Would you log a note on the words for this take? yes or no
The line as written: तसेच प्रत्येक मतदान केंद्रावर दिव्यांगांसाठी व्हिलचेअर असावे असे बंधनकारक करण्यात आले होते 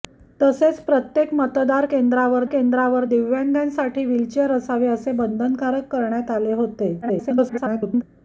yes